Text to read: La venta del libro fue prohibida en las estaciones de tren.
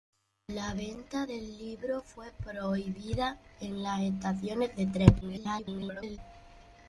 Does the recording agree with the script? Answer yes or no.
no